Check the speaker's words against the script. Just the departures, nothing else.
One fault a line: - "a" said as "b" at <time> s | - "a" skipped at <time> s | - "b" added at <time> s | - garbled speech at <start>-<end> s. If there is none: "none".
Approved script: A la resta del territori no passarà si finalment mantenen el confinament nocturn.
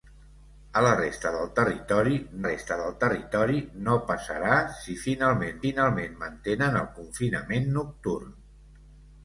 - "resta del territori" added at 2.5 s
- "finalment" added at 5.6 s